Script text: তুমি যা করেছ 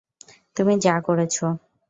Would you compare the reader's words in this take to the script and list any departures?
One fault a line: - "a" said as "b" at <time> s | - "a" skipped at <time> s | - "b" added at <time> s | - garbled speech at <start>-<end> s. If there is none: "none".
none